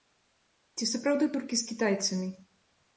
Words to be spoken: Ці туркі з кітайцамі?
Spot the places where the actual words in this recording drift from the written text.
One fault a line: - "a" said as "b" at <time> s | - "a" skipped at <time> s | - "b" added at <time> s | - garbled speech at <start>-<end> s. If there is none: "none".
- "сапраўды" added at 0.9 s